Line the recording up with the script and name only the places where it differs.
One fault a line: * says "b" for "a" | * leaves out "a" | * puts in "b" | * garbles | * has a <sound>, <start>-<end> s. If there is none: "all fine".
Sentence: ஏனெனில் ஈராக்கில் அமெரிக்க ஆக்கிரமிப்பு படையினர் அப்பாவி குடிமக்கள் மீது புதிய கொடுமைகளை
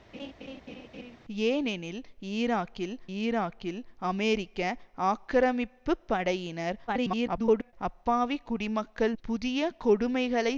* has a laugh, 0.1-1.2 s
* puts in "ஈராக்கில்"
* garbles
* leaves out "மீது"